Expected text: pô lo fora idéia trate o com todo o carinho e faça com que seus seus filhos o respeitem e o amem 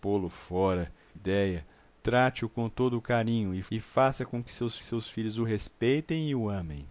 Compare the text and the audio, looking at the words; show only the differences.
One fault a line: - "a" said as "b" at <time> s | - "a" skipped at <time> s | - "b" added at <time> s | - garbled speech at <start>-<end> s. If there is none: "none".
none